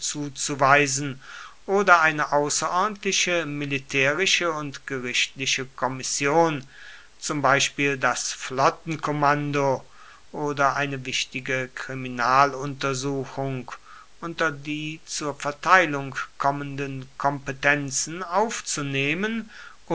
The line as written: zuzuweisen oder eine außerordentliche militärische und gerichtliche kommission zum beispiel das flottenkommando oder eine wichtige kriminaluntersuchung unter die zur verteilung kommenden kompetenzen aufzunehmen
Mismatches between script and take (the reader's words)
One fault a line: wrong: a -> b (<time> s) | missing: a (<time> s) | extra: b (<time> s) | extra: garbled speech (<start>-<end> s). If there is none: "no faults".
no faults